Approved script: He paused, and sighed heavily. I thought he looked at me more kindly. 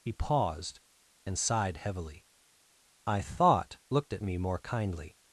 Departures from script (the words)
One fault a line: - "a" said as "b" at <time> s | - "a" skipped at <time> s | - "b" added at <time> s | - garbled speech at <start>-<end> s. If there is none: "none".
- "he" skipped at 3.8 s